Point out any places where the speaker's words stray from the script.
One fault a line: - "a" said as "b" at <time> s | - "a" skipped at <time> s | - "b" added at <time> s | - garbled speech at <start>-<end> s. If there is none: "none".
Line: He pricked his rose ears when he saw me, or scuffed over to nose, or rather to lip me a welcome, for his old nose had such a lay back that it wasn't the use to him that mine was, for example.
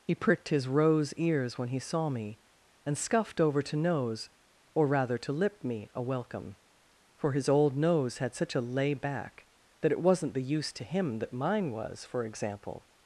- "or" said as "and" at 2.9 s